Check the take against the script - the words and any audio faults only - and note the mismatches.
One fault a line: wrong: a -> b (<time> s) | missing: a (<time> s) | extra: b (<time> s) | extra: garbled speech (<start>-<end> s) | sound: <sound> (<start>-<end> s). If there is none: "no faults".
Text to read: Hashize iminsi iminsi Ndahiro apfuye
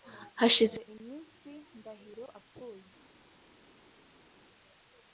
missing: iminsi (1.5 s)